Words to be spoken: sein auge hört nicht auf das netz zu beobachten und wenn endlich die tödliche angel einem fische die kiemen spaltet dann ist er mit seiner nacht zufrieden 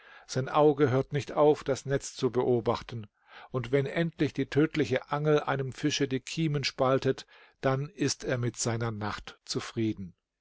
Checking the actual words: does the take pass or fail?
pass